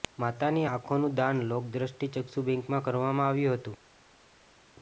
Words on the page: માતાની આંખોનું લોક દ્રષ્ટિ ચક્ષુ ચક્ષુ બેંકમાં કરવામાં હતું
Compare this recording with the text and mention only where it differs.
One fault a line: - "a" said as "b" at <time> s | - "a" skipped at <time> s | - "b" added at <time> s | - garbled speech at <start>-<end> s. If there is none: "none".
- "દાન" added at 1.2 s
- "ચક્ષુ" skipped at 2.4 s
- "આવ્યું" added at 3.3 s